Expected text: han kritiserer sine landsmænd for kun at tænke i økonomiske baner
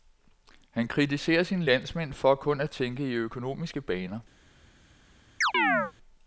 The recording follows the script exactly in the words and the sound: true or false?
false